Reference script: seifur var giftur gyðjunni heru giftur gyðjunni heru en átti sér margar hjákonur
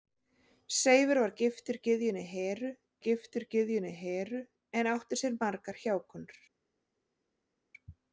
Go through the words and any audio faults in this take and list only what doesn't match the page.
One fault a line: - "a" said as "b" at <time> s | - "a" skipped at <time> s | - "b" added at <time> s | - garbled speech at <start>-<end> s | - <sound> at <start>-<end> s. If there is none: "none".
none